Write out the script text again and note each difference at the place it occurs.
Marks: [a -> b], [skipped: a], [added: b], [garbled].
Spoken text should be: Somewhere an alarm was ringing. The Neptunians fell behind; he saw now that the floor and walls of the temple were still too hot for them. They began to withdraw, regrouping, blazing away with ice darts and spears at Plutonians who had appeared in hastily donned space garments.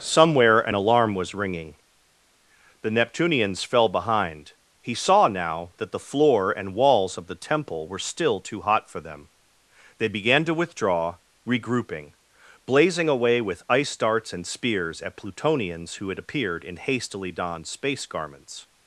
Somewhere an alarm was ringing. The Neptunians fell behind; he saw now that the floor and walls of the temple were still too hot for them. They began to withdraw, regrouping, blazing away with ice darts and spears at Plutonians who had appeared in hastily donned space garments.